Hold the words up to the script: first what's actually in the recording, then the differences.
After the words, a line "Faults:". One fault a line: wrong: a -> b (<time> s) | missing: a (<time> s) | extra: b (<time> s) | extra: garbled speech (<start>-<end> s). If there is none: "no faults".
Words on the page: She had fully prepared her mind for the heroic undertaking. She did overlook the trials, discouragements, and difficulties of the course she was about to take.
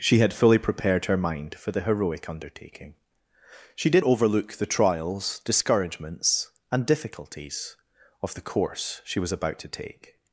She had fully prepared her mind for the heroic undertaking. She did overlook the trials, discouragements, and difficulties of the course she was about to take.
Faults:
no faults